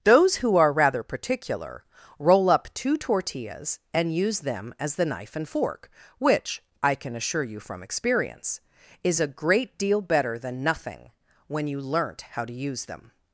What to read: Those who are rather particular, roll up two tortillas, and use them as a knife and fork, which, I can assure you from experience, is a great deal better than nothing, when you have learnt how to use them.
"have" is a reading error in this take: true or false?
true